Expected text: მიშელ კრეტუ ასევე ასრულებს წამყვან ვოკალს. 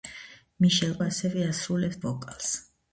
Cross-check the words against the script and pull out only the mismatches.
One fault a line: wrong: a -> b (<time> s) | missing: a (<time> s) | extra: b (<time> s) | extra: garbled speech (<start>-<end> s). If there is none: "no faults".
missing: კრეტუ (0.9 s)
missing: წამყვან (2.0 s)